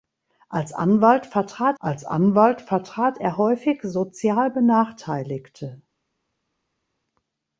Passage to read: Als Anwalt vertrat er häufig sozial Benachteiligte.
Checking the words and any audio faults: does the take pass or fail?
fail